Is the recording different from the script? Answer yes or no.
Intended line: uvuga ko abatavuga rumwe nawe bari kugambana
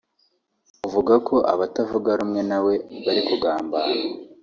no